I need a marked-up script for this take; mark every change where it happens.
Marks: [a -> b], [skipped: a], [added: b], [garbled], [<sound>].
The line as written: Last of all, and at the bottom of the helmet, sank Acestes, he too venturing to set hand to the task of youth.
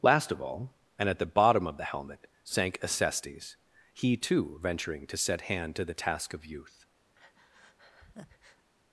Last of all, and at the bottom of the helmet, sank Acestes, he too venturing to set hand to the task of youth. [breath]